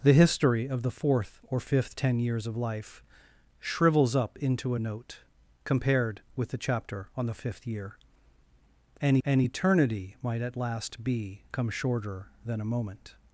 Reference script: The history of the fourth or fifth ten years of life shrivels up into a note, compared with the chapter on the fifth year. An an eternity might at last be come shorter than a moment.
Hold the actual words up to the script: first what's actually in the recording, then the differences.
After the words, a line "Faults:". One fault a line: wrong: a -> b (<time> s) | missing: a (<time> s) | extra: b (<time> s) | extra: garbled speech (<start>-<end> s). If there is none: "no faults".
The history of the fourth or fifth ten years of life shrivels up into a note, compared with the chapter on the fifth year. An an eternity might at last be come shorter than a moment.
Faults:
no faults